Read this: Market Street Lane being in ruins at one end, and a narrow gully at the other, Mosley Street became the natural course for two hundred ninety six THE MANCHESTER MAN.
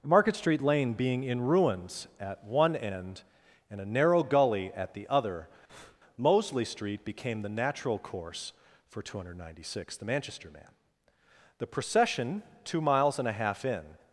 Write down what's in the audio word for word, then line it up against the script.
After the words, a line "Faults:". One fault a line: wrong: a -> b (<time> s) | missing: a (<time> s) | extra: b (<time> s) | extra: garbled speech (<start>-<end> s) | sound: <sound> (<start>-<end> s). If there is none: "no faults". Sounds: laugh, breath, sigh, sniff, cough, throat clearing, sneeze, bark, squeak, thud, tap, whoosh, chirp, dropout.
Market Street Lane being in ruins at one end, and a narrow gully at the other, Mosley Street became the natural course for two hundred ninety six THE MANCHESTER MAN. the procession (two miles and a half in
Faults:
sound: breath (5.7-6.0 s)
extra: the procession two miles and a half in (11.6 s)